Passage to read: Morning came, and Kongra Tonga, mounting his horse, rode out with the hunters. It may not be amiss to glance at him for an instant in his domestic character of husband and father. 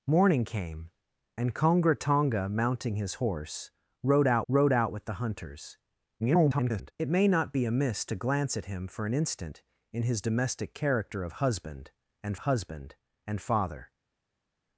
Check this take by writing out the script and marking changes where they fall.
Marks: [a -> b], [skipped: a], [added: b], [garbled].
Morning came, and Kongra Tonga, mounting his horse, rode out [added: rode out] with the hunters. [garbled] It may not be amiss to glance at him for an instant in his domestic character of husband and [added: husband and] father.